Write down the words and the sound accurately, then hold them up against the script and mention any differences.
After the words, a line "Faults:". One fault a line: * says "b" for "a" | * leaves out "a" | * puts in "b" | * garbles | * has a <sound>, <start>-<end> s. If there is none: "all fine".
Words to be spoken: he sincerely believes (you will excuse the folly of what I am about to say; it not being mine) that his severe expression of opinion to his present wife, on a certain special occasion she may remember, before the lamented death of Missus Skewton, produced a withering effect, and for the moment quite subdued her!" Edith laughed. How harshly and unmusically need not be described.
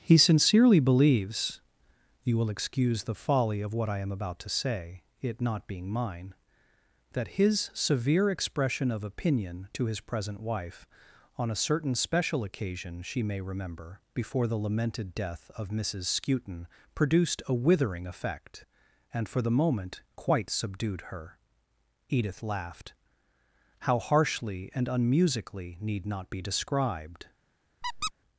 he sincerely believes (you will excuse the folly of what I am about to say; it not being mine) that his severe expression of opinion to his present wife, on a certain special occasion she may remember, before the lamented death of Missus Skewton, produced a withering effect, and for the moment quite subdued her!" Edith laughed. How harshly and unmusically need not be described.
Faults:
* has a squeak, 27.8-28.1 s